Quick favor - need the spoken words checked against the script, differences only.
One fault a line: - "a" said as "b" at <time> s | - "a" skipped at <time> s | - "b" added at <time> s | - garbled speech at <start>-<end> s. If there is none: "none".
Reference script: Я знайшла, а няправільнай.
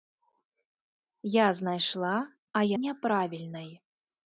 none